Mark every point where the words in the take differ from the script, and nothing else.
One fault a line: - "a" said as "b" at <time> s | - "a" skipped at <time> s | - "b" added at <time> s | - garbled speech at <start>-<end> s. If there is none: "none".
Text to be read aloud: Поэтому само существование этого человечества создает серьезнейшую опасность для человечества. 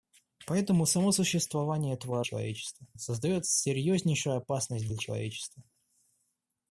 none